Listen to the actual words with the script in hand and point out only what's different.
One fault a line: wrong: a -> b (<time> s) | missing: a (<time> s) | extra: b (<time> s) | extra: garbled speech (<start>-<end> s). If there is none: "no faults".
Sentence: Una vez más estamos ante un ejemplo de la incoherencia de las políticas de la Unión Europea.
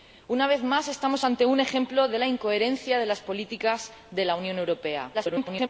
extra: garbled speech (5.1-5.7 s)